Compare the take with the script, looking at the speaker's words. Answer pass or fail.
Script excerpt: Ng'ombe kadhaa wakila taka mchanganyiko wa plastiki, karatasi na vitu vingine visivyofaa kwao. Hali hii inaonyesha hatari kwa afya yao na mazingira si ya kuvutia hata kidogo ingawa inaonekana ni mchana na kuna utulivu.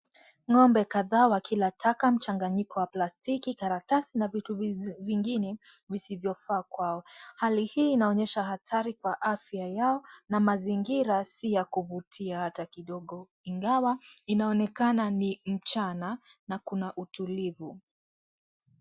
pass